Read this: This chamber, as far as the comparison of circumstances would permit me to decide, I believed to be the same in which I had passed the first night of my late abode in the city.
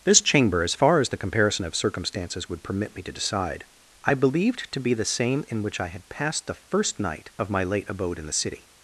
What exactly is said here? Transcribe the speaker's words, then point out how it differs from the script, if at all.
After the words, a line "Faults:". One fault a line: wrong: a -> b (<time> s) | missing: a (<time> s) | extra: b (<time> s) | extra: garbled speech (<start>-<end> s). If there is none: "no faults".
This chamber, as far as the comparison of circumstances would permit me to decide, I believed to be the same in which I had passed the first night of my late abode in the city.
Faults:
no faults